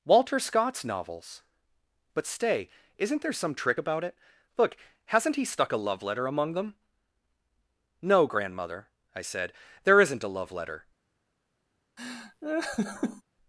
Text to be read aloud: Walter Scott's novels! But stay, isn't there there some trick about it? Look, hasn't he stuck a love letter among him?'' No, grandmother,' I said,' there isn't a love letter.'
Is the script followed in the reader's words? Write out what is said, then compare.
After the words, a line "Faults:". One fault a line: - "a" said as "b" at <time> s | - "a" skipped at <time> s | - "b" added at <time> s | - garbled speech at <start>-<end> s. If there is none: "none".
Walter Scott's novels! But stay, isn't there some trick about it? Look, hasn't he stuck a love letter among them?'' No, grandmother,' I said,' there isn't a love letter.'
Faults:
- "there" skipped at 3.3 s
- "him" said as "them" at 6.5 s